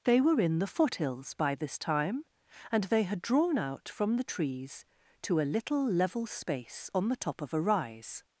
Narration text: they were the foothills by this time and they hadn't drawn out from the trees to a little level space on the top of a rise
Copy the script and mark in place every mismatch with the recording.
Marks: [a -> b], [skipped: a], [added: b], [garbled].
they were [added: in] the foothills by this time and they [hadn't -> had] drawn out from the trees to a little level space on the top of a rise